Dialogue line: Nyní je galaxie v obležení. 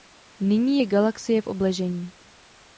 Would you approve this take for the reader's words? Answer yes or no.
yes